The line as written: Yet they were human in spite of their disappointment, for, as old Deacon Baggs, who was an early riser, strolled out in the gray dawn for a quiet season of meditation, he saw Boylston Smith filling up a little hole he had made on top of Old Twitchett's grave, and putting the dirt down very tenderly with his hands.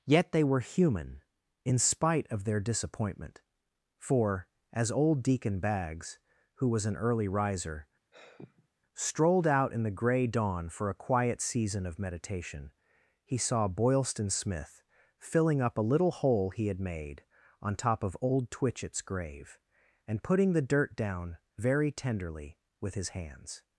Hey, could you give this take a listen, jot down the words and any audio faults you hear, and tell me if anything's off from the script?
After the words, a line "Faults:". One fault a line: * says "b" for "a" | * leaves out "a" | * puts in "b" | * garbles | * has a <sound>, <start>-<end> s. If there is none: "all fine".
Yet they were human in spite of their disappointment, for, as old Deacon Baggs, who was an early riser, strolled out in the gray dawn for a quiet season of meditation, he saw Boylston Smith filling up a little hole he had made on top of Old Twitchett's grave, and putting the dirt down very tenderly with his hands.
Faults:
* has a sigh, 8.1-8.7 s